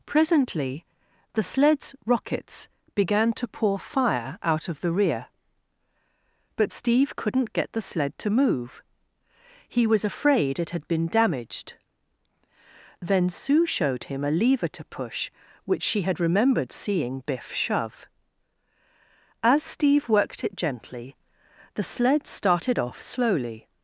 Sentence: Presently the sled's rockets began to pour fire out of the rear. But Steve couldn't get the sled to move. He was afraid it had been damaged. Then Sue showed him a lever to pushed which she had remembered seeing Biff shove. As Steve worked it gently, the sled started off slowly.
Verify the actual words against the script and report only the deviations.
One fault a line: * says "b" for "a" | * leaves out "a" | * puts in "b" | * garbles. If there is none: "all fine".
* says "push" for "pushed"